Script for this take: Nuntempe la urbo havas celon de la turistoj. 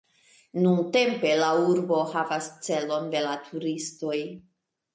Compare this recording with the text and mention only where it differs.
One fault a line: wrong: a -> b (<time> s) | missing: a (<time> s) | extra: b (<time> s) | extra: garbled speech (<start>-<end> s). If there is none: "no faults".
no faults